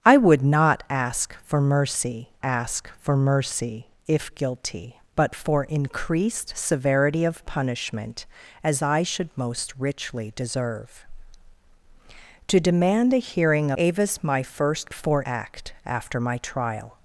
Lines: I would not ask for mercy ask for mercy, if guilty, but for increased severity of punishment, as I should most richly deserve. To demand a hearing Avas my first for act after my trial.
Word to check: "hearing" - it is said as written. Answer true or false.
true